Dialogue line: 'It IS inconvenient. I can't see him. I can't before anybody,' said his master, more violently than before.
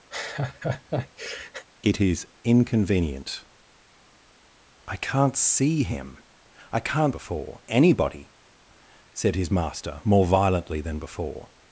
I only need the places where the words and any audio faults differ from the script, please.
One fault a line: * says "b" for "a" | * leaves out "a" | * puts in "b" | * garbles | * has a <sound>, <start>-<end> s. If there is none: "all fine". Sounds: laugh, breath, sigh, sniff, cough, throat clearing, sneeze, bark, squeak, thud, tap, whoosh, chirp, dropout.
* has a laugh, 0.1-1.7 s